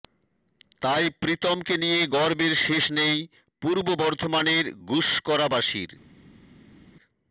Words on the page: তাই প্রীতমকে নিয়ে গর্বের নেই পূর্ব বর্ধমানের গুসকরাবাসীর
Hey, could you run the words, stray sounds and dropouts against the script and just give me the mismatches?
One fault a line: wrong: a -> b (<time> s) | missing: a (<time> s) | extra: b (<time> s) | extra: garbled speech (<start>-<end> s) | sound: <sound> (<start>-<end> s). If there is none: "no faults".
extra: শেষ (2.7 s)